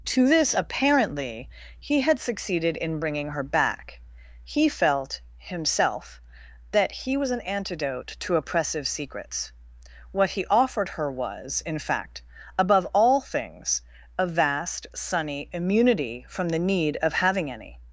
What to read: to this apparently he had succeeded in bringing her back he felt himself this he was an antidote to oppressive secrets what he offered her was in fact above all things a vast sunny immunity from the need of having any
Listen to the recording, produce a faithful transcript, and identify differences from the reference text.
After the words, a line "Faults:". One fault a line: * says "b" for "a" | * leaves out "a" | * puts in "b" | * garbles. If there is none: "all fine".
to this apparently he had succeeded in bringing her back he felt himself that he was an antidote to oppressive secrets what he offered her was in fact above all things a vast sunny immunity from the need of having any
Faults:
* says "that" for "this"